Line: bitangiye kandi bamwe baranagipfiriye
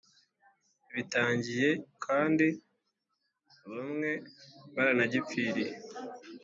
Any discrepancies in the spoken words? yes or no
no